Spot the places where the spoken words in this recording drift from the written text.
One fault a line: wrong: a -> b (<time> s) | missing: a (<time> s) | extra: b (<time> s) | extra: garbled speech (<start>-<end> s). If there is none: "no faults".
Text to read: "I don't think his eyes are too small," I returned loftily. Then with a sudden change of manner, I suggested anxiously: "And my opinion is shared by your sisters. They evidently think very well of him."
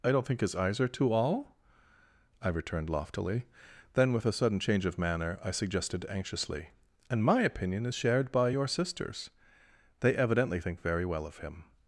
wrong: small -> all (1.1 s)